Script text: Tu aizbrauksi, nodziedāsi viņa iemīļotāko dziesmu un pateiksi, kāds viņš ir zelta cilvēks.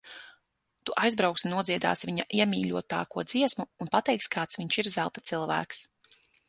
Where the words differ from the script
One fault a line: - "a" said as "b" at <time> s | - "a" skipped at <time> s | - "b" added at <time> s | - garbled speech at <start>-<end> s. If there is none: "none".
none